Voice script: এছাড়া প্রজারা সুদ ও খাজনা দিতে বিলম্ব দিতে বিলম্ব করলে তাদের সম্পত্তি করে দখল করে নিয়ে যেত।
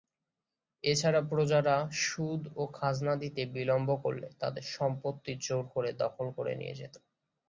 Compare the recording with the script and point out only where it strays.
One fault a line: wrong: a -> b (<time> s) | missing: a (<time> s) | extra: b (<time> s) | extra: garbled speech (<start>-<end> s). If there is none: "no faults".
missing: দিতে বিলম্ব (3.9 s)
extra: জোর (5.4 s)